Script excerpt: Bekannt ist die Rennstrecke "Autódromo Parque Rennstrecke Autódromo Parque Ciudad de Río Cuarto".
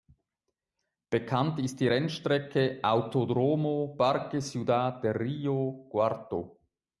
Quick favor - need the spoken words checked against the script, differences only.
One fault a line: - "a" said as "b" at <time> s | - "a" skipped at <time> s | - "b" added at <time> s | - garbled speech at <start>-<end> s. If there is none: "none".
- "Rennstrecke Autódromo Parque" skipped at 4.4 s